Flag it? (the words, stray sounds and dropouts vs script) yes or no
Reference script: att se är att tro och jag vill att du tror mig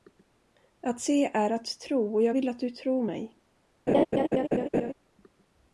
yes